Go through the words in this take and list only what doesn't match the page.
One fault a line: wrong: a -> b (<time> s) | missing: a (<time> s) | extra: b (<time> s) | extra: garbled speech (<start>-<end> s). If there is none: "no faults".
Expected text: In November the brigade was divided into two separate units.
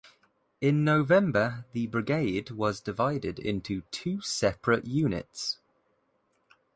no faults